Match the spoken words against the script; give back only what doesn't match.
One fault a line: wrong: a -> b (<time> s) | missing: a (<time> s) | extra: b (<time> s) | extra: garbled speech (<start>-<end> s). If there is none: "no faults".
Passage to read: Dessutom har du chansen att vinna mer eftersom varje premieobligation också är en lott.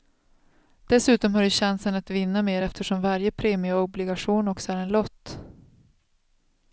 no faults